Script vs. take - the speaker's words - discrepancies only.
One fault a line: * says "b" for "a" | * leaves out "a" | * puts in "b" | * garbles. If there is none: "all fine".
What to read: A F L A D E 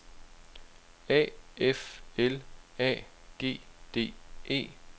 * puts in "G"